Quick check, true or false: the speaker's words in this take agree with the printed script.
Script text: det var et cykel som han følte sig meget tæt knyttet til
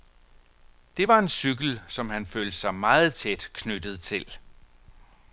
false